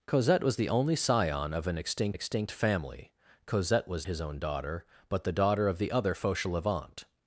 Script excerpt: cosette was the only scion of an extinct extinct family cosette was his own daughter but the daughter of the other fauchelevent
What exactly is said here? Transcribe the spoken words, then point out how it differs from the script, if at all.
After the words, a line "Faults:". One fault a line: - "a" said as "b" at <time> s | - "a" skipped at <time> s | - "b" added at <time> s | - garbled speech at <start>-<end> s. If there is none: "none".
cosette was the only scion of an extinct extinct family cosette was his own daughter but the daughter of the other fauchelevent
Faults:
none